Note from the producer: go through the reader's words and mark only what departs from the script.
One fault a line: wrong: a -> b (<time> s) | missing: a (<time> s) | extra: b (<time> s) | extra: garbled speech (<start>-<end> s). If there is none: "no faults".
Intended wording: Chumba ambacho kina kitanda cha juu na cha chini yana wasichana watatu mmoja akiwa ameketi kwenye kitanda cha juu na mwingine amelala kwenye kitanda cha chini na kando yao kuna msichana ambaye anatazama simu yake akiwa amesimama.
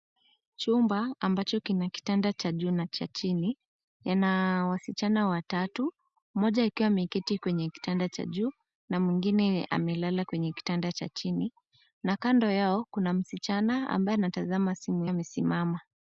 missing: yake akiwa (15.1 s)